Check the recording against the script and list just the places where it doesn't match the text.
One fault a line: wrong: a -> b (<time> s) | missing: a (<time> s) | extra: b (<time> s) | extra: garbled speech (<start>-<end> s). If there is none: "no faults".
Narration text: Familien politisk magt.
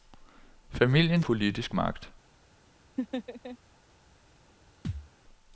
no faults